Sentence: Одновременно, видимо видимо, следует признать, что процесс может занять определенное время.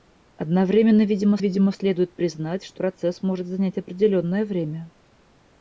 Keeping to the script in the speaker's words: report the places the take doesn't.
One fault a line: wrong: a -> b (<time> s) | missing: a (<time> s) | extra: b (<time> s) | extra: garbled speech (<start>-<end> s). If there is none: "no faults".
no faults